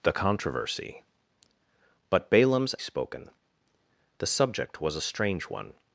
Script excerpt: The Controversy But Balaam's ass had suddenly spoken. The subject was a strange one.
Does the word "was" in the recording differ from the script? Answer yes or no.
no